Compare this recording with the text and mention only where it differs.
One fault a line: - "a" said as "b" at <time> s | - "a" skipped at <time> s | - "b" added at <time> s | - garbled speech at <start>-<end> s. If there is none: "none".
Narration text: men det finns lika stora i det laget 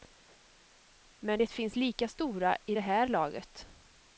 - "här" added at 2.8 s